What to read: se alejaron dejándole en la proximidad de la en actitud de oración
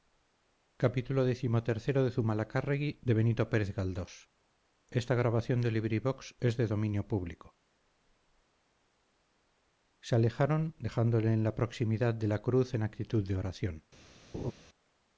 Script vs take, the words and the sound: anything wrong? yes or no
yes